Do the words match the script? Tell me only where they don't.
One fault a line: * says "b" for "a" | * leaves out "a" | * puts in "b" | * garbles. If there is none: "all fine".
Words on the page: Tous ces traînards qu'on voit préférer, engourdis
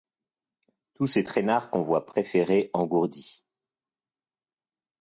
all fine